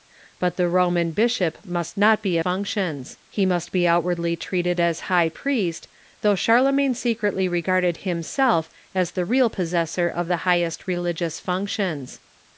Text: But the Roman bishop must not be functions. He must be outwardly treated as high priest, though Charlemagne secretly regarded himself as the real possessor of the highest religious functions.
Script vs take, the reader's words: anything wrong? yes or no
no